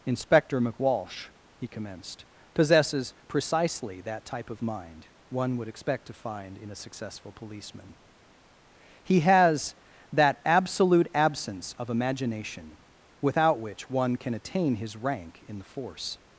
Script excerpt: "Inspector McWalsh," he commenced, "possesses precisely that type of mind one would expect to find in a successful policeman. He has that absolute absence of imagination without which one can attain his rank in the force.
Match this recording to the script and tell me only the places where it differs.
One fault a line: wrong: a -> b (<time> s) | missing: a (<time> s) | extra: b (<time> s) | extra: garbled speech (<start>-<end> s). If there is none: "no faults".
no faults